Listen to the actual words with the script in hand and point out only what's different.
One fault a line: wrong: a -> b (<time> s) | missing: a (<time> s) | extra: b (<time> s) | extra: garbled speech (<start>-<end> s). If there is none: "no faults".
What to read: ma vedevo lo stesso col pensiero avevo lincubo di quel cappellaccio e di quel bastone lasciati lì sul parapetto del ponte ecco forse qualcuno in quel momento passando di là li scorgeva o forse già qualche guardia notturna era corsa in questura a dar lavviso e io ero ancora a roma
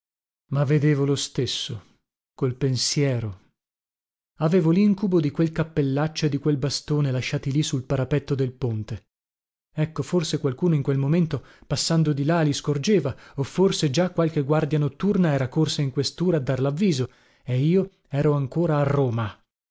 no faults